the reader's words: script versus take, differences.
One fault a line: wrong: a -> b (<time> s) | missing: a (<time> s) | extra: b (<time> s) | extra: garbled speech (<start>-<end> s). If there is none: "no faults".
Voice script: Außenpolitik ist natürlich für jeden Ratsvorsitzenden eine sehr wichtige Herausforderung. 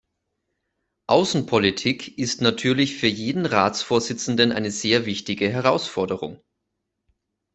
no faults